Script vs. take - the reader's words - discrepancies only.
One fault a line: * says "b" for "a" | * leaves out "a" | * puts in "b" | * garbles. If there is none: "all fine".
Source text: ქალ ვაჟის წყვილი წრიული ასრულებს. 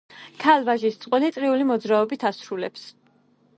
* puts in "მოძრაობით"